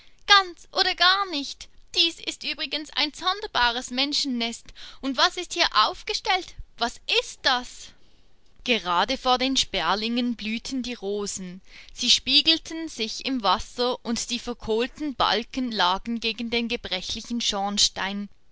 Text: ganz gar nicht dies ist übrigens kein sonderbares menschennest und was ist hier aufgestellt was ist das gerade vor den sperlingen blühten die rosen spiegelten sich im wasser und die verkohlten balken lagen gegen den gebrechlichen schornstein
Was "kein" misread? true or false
true